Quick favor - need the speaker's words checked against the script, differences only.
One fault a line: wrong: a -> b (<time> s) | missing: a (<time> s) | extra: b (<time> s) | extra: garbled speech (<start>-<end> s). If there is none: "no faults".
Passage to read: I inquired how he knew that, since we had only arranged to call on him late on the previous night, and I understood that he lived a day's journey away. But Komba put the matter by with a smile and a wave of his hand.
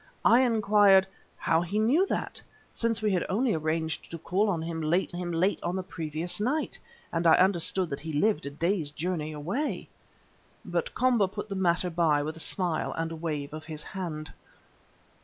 extra: him late (5.1 s)